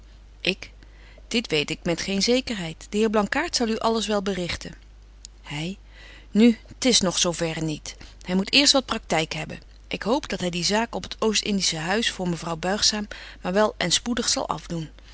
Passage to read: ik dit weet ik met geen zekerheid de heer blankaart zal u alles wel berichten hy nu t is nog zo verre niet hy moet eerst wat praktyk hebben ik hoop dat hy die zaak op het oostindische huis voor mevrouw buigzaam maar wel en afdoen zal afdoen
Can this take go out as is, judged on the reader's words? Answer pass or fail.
fail